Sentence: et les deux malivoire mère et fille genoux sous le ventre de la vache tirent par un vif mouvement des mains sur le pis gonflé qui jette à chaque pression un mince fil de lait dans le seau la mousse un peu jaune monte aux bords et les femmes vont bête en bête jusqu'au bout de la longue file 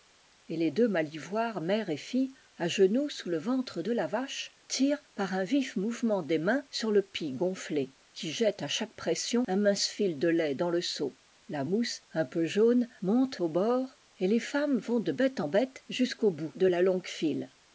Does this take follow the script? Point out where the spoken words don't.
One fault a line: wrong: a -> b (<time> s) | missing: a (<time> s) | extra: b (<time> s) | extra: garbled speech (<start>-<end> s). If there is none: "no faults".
extra: à (2.6 s)
extra: de (15.0 s)